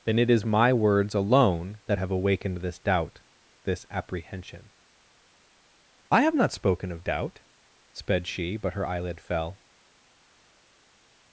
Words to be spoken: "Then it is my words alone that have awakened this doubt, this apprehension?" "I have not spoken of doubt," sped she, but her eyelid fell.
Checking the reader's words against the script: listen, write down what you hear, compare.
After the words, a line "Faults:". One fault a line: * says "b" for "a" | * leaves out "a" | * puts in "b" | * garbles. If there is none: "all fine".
"Then it is my words alone that have awakened this doubt, this apprehension?" "I have not spoken of doubt," sped she, but her eyelid fell.
Faults:
all fine